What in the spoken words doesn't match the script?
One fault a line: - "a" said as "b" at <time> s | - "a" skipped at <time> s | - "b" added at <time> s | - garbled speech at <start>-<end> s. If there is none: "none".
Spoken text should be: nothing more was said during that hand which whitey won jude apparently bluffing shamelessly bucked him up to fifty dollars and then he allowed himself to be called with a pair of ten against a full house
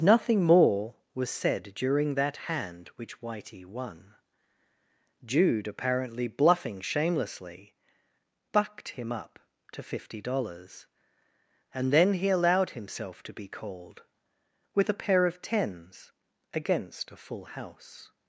- "ten" said as "tens" at 15.4 s